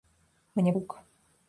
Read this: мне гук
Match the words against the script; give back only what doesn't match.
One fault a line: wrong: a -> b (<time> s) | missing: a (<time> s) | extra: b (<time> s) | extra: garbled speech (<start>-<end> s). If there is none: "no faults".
no faults